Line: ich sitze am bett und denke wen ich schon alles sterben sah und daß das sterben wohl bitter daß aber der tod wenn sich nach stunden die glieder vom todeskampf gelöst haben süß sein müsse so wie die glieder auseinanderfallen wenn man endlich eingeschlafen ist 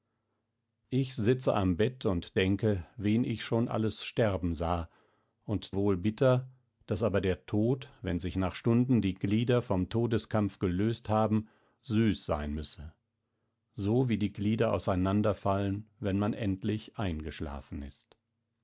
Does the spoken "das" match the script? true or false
false